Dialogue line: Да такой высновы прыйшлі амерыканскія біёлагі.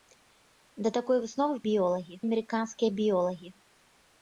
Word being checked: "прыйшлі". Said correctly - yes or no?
no